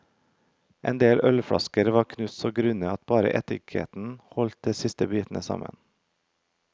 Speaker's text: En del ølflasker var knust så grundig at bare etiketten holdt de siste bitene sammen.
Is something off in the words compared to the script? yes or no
no